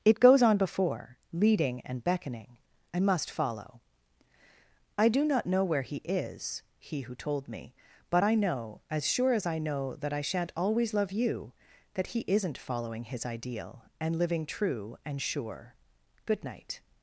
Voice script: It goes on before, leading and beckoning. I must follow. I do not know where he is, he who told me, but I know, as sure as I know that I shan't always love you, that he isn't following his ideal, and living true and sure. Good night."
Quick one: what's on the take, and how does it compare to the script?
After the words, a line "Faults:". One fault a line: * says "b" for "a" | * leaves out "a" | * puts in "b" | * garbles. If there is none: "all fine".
It goes on before, leading and beckoning. I must follow. I do not know where he is, he who told me, but I know, as sure as I know that I shan't always love you, that he isn't following his ideal, and living true and sure. Good night."
Faults:
all fine